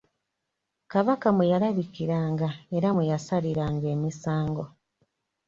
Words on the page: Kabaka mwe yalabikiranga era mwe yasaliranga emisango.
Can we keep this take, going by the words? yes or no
yes